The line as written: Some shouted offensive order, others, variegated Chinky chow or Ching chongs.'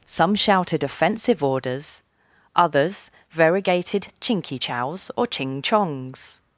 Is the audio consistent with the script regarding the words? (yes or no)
no